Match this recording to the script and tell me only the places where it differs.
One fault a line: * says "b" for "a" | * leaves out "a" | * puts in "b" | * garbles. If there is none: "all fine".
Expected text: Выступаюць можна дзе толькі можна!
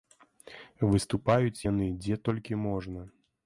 * says "яны" for "можна"